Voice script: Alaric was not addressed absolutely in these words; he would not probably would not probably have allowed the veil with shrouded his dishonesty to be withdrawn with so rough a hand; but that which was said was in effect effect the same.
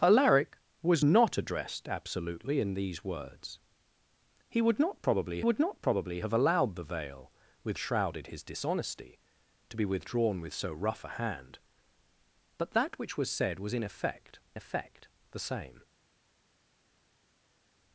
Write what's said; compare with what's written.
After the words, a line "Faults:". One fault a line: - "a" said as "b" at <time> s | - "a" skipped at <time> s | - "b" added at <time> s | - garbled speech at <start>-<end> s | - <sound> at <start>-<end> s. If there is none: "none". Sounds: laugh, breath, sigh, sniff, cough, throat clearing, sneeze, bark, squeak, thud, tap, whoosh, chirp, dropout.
Alaric was not addressed absolutely in these words; he would not probably would not probably have allowed the veil with shrouded his dishonesty to be withdrawn with so rough a hand; but that which was said was in effect effect the same.
Faults:
none